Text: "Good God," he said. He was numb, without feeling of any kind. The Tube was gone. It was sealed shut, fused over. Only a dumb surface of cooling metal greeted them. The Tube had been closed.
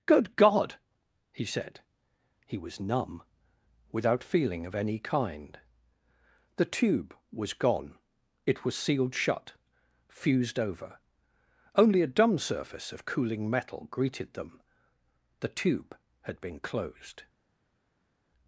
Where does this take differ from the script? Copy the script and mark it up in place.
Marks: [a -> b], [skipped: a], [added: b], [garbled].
"Good God," he said. He was numb, without feeling of any kind. The Tube was gone. It was sealed shut, fused over. Only a dumb surface of cooling metal greeted them. The Tube had been closed.